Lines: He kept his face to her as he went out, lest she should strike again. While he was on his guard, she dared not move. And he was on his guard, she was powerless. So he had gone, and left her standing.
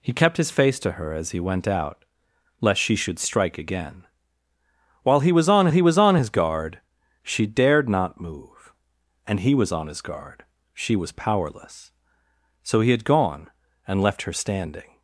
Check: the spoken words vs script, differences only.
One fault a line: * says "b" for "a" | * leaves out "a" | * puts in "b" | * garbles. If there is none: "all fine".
* puts in "he was on"